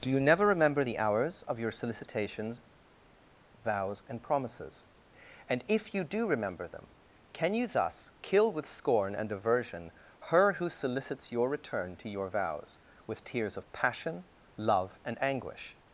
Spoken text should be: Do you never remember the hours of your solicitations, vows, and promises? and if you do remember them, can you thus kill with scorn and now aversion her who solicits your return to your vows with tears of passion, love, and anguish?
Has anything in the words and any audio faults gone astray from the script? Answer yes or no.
yes